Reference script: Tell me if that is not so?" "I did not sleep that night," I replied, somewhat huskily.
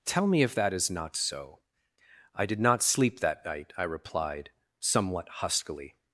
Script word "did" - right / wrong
right